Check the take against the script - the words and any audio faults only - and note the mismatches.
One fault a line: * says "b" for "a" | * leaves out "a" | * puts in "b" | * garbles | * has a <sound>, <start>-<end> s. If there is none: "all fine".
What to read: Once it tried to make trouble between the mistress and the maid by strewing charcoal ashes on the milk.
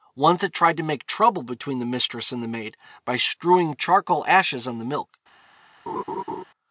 * has a laugh, 5.9-6.4 s